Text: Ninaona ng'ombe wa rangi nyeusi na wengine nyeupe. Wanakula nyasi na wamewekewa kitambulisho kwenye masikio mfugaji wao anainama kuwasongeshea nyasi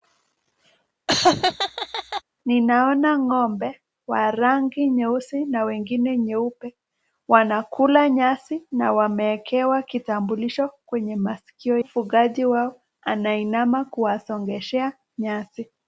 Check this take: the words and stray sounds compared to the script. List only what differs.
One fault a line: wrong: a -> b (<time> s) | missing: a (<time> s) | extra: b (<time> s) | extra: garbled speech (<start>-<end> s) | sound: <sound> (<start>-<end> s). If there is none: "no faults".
sound: laugh (1.1-2.2 s)